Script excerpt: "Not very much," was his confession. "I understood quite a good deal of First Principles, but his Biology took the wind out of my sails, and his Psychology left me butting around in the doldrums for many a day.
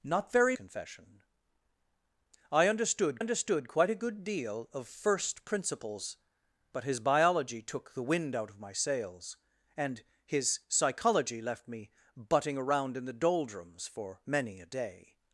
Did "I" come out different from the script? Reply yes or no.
no